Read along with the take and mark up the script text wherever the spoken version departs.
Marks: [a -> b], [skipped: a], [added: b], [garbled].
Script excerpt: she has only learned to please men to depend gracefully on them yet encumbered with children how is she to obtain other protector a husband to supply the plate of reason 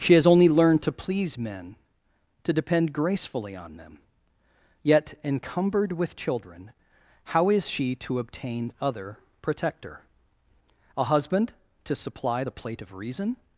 she has only learned to please men to depend gracefully on them yet encumbered with children how is she to obtain other protector a husband to supply the plate of reason